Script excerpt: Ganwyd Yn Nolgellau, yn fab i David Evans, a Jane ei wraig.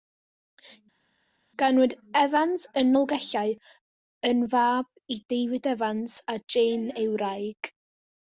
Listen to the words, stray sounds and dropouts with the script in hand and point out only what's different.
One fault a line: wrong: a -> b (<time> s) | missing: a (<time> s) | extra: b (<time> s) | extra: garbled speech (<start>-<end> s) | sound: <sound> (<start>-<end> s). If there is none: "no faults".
extra: Evans (2.2 s)